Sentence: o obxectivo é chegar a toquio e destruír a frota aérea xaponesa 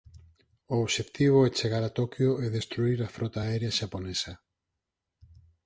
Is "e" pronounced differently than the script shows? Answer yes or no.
no